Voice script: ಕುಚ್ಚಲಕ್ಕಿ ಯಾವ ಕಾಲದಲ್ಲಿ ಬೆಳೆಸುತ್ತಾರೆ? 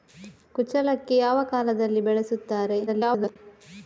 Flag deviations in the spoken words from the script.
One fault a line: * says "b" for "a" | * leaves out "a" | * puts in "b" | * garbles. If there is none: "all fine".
* garbles